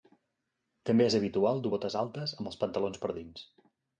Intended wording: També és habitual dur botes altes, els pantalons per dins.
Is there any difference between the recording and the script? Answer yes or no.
yes